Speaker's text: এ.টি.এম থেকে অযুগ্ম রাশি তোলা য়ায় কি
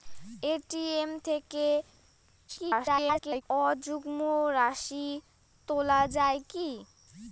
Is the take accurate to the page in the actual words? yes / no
no